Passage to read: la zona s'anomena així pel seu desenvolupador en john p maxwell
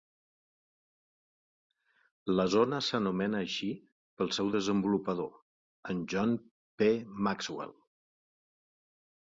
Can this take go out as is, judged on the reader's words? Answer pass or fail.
pass